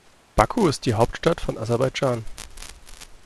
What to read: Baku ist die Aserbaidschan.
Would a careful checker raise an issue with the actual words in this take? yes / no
yes